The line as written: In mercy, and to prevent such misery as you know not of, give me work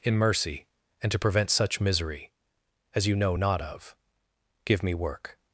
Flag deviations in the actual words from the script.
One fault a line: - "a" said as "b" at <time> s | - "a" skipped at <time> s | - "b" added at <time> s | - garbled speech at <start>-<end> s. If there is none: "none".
none